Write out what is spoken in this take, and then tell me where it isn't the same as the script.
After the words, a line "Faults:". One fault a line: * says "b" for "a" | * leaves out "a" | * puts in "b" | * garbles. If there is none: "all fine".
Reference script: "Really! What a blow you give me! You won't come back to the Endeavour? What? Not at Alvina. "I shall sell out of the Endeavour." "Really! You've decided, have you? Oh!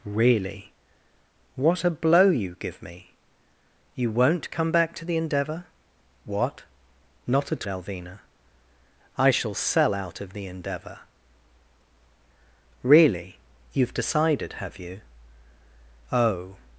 "Really! What a blow you give me! You won't come back to the Endeavour? What? Not at Alvina. "I shall sell out of the Endeavour." "Really! You've decided, have you? Oh!
Faults:
all fine